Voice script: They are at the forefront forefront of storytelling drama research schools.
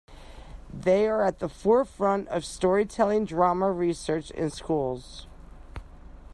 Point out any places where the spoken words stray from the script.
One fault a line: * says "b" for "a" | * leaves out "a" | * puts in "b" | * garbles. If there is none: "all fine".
* leaves out "forefront"
* puts in "in"